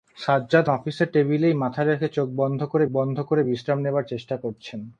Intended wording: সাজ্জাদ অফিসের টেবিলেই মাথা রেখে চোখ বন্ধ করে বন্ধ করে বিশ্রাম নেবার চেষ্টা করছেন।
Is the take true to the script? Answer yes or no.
yes